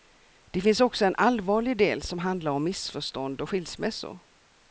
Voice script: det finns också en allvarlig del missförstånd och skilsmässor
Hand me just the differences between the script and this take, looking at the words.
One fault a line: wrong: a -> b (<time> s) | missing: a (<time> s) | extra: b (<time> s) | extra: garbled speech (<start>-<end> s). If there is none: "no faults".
extra: som handlar om (2.0 s)